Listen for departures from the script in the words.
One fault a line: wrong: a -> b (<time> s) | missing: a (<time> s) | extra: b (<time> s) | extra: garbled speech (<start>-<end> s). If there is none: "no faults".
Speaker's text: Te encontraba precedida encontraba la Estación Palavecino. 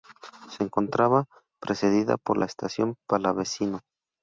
wrong: Te -> Se (0.5 s)
wrong: encontraba -> por (2.2 s)